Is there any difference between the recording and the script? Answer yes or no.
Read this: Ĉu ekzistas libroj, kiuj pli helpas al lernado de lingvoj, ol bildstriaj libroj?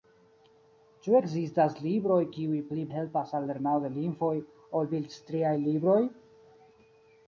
no